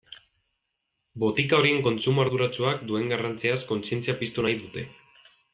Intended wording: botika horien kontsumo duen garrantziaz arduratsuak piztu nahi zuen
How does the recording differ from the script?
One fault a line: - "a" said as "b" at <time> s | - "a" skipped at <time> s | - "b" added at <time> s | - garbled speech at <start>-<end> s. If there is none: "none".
- "arduratsuak" added at 2.2 s
- "arduratsuak" said as "kontzientzia" at 3.7 s
- "zuen" said as "dute" at 4.7 s